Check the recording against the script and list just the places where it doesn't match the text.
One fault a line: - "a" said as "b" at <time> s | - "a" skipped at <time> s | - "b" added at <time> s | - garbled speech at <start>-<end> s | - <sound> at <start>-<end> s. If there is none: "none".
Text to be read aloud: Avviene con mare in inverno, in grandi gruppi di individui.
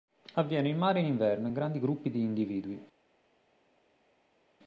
- "con" said as "in" at 0.7 s